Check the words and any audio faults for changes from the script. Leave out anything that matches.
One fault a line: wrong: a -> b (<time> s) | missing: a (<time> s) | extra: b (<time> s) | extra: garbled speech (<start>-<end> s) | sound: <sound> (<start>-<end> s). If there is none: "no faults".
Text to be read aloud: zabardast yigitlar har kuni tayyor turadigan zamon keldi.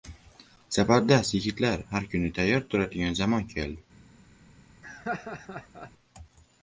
sound: laugh (4.8-5.9 s)